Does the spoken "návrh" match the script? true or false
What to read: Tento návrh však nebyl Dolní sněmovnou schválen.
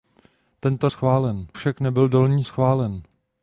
false